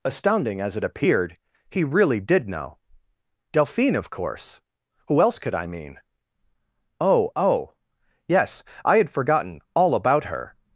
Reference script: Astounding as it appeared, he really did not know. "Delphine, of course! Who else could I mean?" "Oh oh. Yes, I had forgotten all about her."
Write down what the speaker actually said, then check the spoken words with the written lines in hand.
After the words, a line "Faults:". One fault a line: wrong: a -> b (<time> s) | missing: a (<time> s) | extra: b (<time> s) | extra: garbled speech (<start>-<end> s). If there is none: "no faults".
Astounding as it appeared, he really did know. "Delphine, of course! Who else could I mean?" "Oh oh. Yes, I had forgotten all about her."
Faults:
missing: not (2.5 s)